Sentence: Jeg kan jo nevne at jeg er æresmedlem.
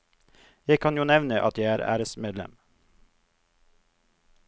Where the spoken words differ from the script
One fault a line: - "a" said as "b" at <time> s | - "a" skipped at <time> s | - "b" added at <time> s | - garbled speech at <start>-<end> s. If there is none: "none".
none